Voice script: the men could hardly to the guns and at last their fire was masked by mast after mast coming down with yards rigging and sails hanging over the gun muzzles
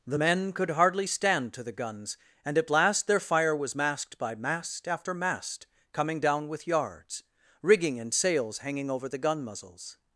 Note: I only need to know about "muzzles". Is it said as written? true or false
true